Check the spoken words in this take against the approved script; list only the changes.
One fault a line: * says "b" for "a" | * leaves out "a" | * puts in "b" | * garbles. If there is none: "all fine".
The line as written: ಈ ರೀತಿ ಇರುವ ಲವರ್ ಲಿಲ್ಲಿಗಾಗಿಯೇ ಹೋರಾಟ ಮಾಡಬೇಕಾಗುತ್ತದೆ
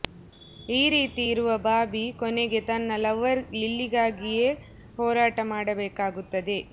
* puts in "ಬಾಬಿ ಕೊನೆಗೆ ತನ್ನ"